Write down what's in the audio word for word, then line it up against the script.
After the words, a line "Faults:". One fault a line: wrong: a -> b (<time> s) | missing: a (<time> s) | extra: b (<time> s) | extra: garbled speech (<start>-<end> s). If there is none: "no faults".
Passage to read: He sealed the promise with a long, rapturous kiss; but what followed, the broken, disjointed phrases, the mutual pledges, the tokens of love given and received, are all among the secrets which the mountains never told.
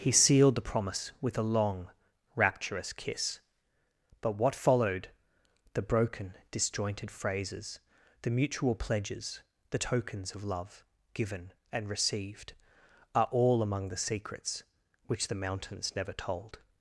He sealed the promise with a long, rapturous kiss; but what followed, the broken, disjointed phrases, the mutual pledges, the tokens of love given and received, are all among the secrets which the mountains never told.
Faults:
no faults